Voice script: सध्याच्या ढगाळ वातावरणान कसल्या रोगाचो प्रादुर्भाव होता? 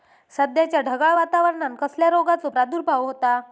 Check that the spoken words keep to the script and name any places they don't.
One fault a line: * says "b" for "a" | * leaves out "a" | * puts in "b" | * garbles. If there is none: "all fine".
all fine